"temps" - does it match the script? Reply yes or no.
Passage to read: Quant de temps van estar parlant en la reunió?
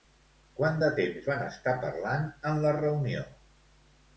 yes